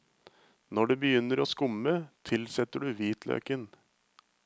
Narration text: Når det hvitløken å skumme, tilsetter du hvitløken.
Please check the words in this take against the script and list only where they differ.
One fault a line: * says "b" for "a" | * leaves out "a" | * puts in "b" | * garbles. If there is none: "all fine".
* says "begynner" for "hvitløken"